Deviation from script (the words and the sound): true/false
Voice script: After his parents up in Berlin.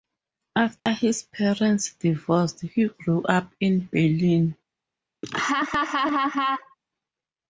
true